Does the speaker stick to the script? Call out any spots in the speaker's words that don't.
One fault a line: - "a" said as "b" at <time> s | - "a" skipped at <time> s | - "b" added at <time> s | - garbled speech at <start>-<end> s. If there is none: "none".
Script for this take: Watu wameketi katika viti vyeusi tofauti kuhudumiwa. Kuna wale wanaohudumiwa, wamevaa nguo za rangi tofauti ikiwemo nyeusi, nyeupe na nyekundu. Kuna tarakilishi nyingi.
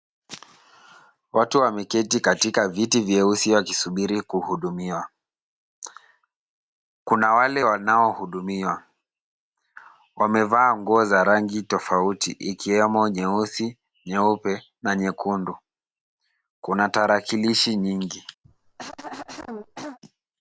- "tofauti" said as "wakisubiri" at 3.5 s